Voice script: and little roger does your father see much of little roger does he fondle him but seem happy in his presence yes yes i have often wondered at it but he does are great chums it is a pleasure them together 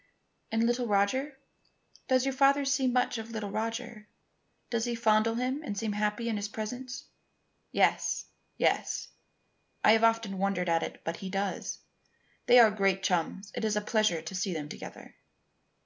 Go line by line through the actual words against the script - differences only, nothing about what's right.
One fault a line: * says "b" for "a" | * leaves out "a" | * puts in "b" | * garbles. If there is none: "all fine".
* says "and" for "but"
* puts in "they"
* puts in "to see"